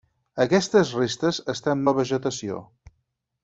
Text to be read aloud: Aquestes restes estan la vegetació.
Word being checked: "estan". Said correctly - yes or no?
yes